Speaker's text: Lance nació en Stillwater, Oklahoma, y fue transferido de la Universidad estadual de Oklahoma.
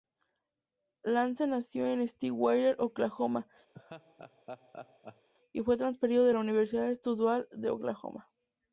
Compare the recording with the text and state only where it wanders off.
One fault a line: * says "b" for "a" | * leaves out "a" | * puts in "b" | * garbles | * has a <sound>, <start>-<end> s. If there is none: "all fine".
* has a laugh, 3.7-5.3 s